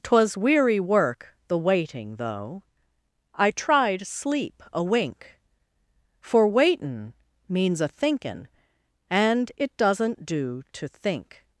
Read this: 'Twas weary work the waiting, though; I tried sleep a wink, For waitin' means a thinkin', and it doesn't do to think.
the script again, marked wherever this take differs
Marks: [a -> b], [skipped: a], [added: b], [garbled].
'Twas weary work the waiting, though; I tried sleep a wink, For waitin' means a thinkin', and it doesn't do to think.